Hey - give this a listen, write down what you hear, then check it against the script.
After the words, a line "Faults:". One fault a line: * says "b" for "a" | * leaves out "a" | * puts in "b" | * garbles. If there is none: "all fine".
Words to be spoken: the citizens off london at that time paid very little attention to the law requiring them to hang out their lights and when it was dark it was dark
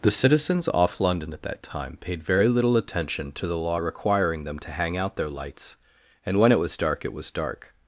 the citizens off london at that time paid very little attention to the law requiring them to hang out their lights and when it was dark it was dark
Faults:
all fine